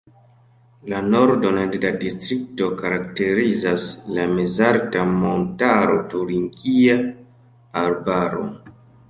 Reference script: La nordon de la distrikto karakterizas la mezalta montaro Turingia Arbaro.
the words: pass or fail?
pass